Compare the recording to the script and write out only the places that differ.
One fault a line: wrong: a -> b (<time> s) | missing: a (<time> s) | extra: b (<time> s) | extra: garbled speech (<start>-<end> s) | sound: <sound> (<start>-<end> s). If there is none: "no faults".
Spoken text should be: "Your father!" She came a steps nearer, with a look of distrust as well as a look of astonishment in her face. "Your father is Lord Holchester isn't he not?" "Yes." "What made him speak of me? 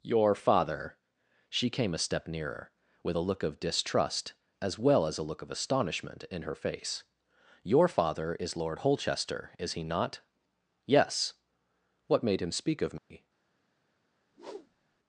wrong: steps -> step (2.0 s)
wrong: isn't -> is (9.6 s)
sound: dropout (13.0-13.1 s)
sound: whoosh (14.3-15.0 s)